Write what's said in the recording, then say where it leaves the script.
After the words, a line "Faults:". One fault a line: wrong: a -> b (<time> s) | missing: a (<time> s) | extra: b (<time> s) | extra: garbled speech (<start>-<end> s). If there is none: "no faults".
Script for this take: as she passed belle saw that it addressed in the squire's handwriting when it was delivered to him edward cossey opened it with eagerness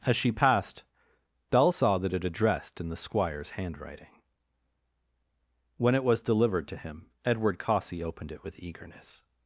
as she passed belle saw that it addressed in the squire's handwriting when it was delivered to him edward cossey opened it with eagerness
Faults:
no faults